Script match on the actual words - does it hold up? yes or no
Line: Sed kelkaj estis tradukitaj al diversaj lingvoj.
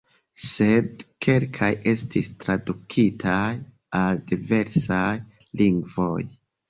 yes